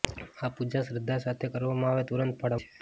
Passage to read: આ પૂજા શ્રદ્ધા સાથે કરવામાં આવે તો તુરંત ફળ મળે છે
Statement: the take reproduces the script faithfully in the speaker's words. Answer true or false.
false